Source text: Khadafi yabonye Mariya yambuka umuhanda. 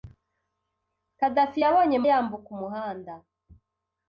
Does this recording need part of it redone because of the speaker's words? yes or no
yes